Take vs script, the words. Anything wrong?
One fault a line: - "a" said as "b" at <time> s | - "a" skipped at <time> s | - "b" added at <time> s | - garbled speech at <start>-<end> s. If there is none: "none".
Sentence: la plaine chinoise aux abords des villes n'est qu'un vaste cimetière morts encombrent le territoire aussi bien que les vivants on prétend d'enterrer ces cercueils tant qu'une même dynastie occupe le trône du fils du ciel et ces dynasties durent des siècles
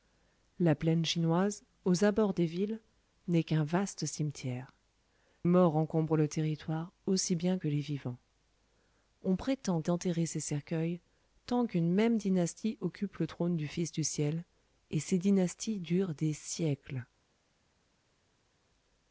none